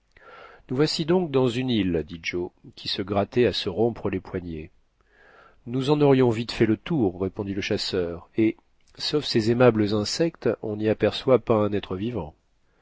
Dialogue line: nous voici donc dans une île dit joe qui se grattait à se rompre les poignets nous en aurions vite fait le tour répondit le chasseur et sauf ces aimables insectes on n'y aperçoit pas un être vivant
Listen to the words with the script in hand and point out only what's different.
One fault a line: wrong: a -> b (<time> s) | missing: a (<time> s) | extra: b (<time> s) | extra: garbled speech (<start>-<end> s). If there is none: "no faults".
no faults